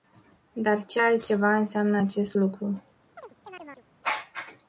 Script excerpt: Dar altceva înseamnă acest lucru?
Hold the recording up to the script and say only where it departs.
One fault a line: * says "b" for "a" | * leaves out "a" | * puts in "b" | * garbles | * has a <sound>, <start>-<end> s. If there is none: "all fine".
* puts in "ce"
* has a chirp, 3.2-3.9 s